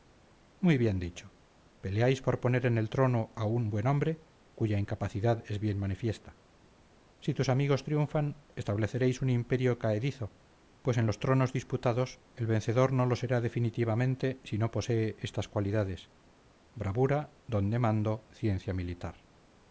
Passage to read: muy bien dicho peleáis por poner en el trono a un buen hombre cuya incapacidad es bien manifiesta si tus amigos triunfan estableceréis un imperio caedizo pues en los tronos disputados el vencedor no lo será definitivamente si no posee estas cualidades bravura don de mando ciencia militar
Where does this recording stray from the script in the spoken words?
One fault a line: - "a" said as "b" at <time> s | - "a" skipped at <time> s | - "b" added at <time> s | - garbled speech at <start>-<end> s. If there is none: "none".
none